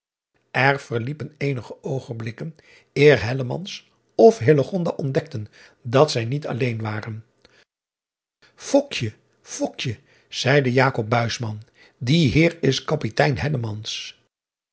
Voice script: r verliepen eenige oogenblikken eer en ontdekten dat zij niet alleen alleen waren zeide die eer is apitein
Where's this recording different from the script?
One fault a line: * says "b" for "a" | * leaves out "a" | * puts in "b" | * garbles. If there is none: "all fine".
* says "of" for "en"
* leaves out "alleen"